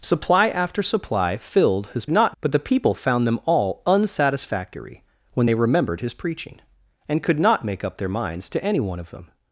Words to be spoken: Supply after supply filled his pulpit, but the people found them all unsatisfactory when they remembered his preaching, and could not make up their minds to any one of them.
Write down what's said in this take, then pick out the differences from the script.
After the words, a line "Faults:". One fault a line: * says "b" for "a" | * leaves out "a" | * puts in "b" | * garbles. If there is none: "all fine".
Supply after supply filled his not, but the people found them all unsatisfactory when they remembered his preaching, and could not make up their minds to any one of them.
Faults:
* says "not" for "pulpit"